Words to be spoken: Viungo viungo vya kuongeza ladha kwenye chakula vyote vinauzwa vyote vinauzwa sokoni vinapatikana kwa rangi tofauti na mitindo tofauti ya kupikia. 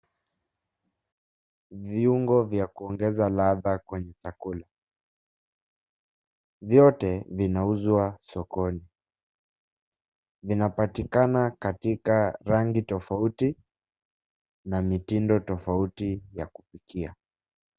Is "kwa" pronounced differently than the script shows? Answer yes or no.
yes